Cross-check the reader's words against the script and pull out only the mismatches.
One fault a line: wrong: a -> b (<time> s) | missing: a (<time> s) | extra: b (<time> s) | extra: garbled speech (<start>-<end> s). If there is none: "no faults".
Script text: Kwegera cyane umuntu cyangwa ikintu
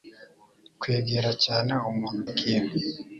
missing: cyangwa (2.2 s)